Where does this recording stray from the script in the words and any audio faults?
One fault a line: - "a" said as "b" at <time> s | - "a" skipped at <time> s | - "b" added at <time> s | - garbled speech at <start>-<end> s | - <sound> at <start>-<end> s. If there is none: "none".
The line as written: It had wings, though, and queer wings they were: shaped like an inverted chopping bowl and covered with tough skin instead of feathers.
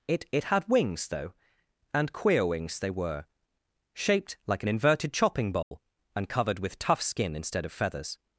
- "it" added at 0.3 s
- dropout at 5.6-5.7 s